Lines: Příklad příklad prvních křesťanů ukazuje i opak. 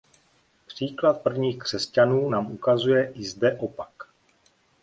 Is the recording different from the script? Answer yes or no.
yes